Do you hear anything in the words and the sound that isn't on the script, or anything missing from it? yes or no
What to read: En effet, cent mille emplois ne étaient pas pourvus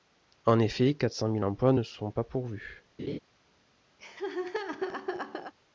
yes